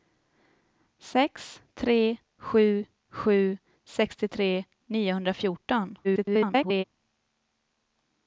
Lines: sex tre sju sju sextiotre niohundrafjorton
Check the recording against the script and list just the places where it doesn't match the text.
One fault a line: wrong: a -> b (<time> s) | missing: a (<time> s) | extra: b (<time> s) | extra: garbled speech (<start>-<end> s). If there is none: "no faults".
extra: garbled speech (6.0-6.8 s)